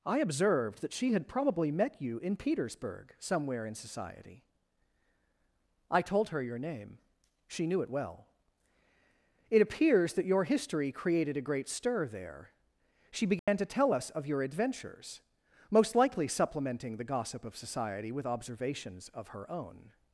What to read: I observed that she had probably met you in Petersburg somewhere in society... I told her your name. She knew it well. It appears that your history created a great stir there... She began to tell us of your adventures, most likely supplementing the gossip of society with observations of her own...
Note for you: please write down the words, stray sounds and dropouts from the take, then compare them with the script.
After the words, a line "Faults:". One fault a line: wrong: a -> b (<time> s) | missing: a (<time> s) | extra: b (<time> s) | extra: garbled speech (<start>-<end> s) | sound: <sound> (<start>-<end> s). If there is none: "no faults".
I observed that she had probably met you in Petersburg somewhere in society... I told her your name. She knew it well. It appears that your history created a great stir there... She began to tell us of your adventures, most likely supplementing the gossip of society with observations of her own...
Faults:
sound: dropout (13.4-13.5 s)